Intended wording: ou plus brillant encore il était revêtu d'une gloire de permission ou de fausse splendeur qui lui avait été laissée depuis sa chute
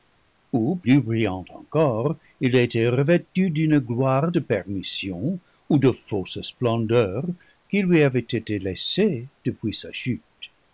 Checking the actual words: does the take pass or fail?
pass